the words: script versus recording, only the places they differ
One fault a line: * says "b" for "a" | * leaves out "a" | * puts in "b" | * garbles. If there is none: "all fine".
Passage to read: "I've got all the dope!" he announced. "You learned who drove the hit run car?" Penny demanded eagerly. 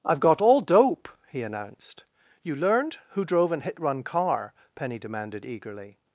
* leaves out "the"
* says "an" for "the"